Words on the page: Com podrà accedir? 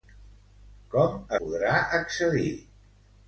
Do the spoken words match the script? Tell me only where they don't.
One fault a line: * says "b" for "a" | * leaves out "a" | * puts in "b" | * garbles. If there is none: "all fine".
all fine